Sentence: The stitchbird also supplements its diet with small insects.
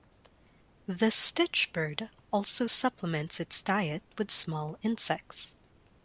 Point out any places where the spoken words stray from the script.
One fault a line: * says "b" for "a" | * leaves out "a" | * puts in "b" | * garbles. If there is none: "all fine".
all fine